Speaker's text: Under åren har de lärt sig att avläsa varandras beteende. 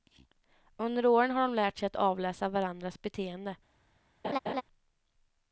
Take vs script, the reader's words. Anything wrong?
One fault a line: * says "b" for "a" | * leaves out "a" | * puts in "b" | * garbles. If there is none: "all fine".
all fine